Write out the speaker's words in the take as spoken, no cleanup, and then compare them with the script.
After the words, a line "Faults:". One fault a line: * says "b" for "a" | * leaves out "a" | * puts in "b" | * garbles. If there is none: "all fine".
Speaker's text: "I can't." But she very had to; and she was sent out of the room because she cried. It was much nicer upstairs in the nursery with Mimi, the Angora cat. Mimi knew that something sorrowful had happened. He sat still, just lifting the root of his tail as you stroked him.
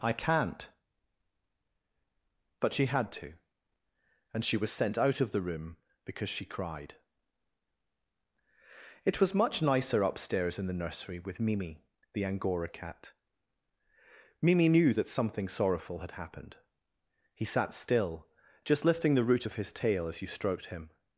"I can't." But she had to; and she was sent out of the room because she cried. It was much nicer upstairs in the nursery with Mimi, the Angora cat. Mimi knew that something sorrowful had happened. He sat still, just lifting the root of his tail as you stroked him.
Faults:
* leaves out "very"